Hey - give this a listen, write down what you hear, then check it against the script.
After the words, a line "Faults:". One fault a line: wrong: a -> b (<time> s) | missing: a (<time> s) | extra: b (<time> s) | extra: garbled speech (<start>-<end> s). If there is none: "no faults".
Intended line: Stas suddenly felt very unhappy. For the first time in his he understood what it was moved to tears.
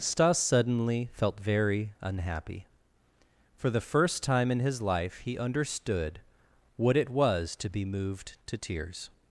Stas suddenly felt very unhappy. For the first time in his life he understood what it was to be moved to tears.
Faults:
extra: life (4.8 s)
extra: to be (7.6 s)